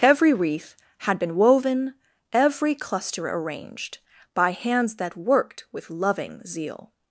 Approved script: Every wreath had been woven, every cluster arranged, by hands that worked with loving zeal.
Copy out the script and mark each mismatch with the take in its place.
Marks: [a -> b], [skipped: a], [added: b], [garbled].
Every wreath had been woven, every cluster arranged, by hands that worked with loving zeal.